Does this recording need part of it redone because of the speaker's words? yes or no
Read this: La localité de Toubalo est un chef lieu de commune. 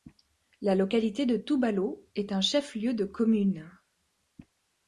no